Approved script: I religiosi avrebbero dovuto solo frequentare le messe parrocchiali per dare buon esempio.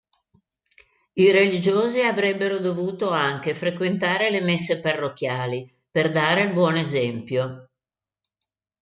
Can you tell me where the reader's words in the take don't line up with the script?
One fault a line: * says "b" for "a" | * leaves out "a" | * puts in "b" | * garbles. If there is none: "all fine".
* says "anche" for "solo"
* puts in "il"